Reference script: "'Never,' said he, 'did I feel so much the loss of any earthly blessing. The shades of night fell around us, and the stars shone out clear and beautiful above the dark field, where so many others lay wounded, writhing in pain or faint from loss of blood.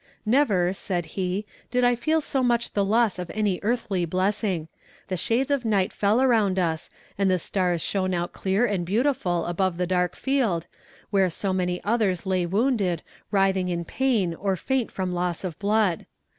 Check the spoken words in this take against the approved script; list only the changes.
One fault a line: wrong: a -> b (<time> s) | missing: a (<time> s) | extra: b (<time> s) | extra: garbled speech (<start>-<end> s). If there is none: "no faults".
no faults